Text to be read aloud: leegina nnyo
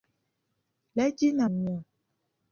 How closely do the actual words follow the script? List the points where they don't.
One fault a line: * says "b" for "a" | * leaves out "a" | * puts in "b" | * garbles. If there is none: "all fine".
all fine